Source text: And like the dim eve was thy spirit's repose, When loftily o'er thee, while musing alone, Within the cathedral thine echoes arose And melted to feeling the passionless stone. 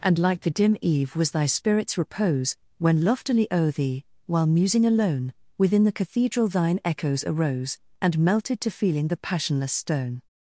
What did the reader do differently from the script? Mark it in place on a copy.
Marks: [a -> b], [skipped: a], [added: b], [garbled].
And like the dim eve was thy spirit's repose, When loftily o'er thee, while musing alone, Within the cathedral thine echoes arose And melted to feeling the passionless stone.